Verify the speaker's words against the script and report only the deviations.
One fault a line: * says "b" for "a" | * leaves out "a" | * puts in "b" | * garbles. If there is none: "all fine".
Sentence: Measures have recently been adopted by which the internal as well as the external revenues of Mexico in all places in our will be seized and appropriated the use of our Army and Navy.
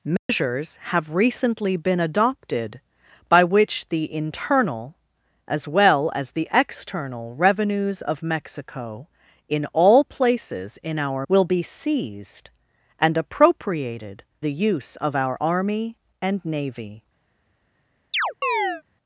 all fine